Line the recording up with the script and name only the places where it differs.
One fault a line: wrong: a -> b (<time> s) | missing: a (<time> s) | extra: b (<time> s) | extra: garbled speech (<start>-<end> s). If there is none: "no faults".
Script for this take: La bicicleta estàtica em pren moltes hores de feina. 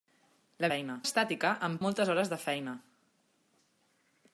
wrong: bicicleta -> feina (0.7 s)
missing: pren (1.8 s)